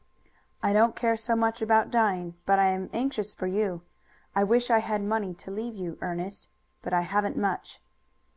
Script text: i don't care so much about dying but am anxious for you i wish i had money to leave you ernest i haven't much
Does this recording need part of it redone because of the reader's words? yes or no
yes